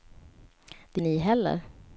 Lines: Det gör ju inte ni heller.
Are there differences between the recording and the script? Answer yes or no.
yes